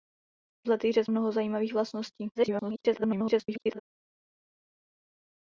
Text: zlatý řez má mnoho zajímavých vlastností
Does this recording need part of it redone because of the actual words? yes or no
yes